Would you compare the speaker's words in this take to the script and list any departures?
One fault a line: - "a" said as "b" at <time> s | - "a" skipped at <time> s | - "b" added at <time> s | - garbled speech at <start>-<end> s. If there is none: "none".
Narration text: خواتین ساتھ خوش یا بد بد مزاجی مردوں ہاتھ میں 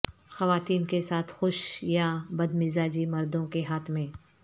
- "کے" added at 0.8 s
- "بد" skipped at 2.5 s
- "کے" added at 3.5 s